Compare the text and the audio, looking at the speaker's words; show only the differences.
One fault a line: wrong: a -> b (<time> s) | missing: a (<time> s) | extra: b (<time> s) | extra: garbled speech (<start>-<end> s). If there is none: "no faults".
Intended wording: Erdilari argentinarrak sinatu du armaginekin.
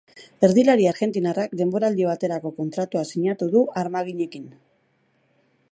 extra: denboraldi baterako kontratua (1.6 s)